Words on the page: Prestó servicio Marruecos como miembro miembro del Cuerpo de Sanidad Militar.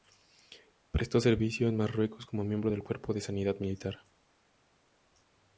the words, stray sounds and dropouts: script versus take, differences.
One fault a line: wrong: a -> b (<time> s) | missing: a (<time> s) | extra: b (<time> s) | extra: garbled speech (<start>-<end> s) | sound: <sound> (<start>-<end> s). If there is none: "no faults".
extra: en (1.7 s)
missing: miembro (2.7 s)